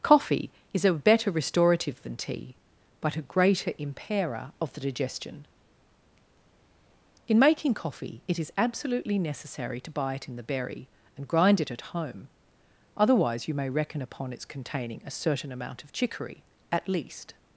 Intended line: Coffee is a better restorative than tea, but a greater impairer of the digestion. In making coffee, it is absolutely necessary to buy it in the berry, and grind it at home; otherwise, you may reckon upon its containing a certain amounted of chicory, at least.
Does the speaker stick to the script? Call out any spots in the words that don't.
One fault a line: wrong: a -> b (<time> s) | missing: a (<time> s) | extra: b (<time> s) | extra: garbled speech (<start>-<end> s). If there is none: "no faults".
wrong: amounted -> amount (15.5 s)